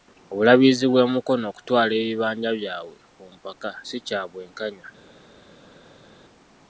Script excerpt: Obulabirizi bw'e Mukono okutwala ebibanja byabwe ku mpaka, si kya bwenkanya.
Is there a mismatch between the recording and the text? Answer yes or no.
no